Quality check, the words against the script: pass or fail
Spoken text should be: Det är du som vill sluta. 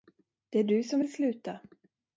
pass